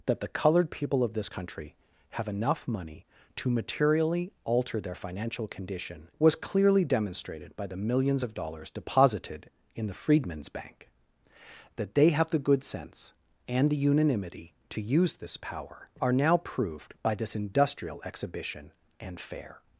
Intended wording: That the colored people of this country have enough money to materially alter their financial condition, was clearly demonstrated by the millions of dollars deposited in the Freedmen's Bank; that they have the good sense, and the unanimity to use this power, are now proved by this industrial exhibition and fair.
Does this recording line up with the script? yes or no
yes